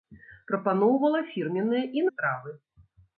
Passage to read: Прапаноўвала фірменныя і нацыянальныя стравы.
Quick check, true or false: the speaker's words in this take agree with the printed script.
false